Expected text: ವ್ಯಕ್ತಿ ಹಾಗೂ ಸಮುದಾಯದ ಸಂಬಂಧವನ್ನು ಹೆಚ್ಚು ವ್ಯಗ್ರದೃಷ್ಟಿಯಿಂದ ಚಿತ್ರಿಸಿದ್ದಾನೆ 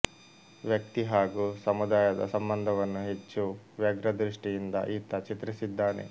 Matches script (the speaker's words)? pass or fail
fail